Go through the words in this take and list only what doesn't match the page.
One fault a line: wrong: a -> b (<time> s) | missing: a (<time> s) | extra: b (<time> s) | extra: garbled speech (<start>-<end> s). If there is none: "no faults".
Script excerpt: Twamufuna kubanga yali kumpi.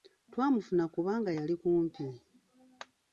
no faults